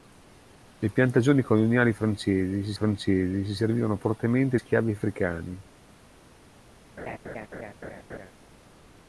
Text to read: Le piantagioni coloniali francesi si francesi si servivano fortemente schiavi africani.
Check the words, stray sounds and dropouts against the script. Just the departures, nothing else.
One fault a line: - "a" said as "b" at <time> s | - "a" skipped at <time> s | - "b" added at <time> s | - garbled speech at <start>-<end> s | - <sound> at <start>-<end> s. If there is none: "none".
- laugh at 7.0-8.3 s